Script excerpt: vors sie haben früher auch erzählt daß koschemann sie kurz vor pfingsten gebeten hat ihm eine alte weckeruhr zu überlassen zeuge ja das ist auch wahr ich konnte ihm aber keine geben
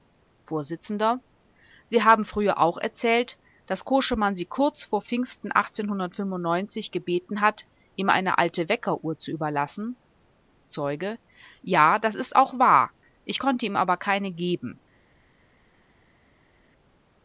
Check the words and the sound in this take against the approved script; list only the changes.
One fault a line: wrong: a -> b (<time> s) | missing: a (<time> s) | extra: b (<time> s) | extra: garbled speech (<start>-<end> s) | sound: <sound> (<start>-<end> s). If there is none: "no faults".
no faults